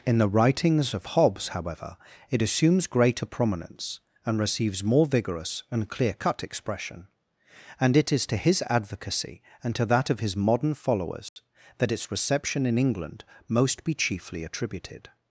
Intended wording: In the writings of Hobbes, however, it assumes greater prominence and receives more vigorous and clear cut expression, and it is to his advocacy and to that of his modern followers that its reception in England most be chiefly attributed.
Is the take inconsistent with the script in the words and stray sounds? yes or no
yes